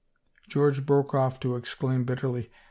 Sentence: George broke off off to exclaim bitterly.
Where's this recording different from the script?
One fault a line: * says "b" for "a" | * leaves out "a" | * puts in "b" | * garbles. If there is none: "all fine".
* leaves out "off"